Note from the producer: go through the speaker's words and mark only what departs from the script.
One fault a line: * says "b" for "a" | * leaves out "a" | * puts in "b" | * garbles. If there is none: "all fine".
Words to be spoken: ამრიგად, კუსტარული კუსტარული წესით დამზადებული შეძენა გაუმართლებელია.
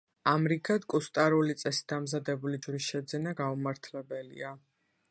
* leaves out "კუსტარული"
* puts in "ჯვრის"